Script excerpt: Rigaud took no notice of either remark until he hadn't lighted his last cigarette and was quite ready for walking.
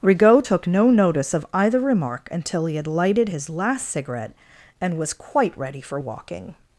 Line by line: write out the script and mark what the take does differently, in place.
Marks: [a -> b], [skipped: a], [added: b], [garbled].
Rigaud took no notice of either remark until he [hadn't -> had] lighted his last cigarette and was quite ready for walking.